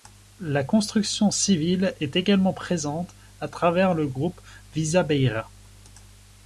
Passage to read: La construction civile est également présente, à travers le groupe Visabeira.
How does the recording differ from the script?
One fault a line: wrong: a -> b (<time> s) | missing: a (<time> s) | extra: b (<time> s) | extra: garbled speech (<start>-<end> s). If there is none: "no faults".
no faults